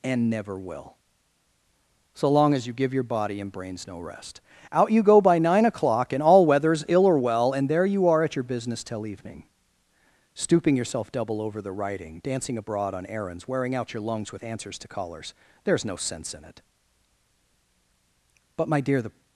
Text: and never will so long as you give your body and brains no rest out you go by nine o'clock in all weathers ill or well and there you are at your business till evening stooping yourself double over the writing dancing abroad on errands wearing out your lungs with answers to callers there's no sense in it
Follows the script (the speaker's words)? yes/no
no